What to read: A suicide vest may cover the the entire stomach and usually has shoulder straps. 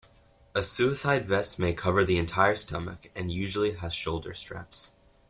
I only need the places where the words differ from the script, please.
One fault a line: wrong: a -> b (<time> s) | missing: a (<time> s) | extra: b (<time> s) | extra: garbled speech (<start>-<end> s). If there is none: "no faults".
missing: the (2.2 s)